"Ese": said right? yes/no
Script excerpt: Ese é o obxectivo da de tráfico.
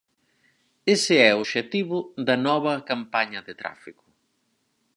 yes